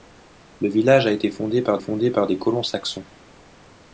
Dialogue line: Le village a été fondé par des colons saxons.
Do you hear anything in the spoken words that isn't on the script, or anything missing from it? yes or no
yes